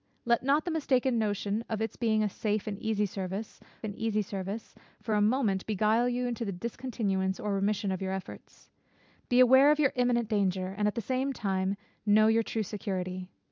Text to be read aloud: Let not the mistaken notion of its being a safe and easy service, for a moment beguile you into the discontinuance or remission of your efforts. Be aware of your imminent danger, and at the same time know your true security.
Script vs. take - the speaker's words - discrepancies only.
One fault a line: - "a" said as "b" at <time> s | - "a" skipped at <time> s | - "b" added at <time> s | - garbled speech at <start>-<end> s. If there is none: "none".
- "and easy service" added at 3.8 s